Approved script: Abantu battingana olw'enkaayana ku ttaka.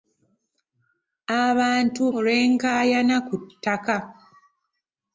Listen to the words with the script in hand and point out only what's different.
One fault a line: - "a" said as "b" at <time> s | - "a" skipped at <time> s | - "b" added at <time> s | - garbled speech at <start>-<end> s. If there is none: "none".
- "battingana" skipped at 2.0 s